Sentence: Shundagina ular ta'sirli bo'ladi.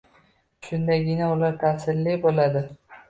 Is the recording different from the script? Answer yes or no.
no